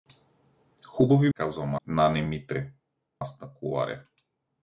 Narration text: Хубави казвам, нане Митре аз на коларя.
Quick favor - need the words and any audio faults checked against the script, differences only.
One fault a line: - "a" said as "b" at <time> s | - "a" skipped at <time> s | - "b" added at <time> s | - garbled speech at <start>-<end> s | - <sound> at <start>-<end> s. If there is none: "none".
none